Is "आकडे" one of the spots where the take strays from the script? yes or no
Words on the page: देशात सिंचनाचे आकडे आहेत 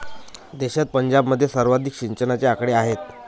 no